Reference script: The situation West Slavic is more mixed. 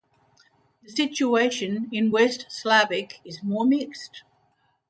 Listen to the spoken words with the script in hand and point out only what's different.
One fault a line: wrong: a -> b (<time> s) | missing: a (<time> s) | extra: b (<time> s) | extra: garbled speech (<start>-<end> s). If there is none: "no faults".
extra: in (1.9 s)